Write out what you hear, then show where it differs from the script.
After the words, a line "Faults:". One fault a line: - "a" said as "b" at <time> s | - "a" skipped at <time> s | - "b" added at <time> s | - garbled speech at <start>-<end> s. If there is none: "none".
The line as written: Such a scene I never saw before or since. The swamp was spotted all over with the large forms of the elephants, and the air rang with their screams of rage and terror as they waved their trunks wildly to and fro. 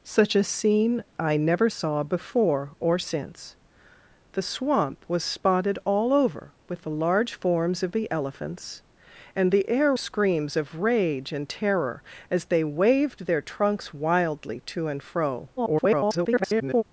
Such a scene I never saw before or since. The swamp was spotted all over with the large forms of the elephants, and the air screams of rage and terror as they waved their trunks wildly to and fro. [garbled]
Faults:
- "rang with their" skipped at 9.9 s
- garbled speech at 15.6-16.8 s